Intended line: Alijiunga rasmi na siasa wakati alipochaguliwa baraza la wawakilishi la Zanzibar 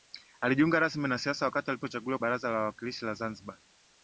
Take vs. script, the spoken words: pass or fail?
pass